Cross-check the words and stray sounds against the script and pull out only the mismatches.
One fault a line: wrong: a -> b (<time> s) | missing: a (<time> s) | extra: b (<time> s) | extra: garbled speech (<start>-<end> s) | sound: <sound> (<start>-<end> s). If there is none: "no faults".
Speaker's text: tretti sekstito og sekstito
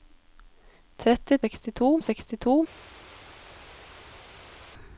no faults